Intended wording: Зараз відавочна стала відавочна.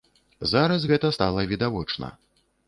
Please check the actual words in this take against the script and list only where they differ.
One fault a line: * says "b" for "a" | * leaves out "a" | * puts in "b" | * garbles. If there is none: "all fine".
* says "гэта" for "відавочна"